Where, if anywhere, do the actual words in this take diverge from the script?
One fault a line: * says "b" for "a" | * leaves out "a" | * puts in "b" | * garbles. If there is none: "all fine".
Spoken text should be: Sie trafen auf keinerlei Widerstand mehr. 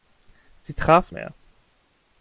* leaves out "auf keinerlei Widerstand"